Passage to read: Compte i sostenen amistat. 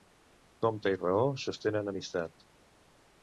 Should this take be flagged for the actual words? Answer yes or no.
yes